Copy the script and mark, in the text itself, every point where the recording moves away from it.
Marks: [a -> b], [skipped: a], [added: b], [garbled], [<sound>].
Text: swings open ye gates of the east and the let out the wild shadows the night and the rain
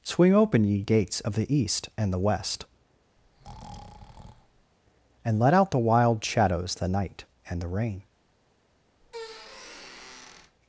[swings -> swing] open ye gates of the east and the [added: west and] [breath] let out the wild shadows the night and the rain [squeak]